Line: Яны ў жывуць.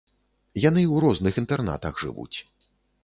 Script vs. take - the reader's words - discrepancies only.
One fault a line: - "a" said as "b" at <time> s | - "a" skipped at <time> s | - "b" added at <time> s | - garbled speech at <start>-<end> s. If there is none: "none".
- "розных інтэрнатах" added at 1.1 s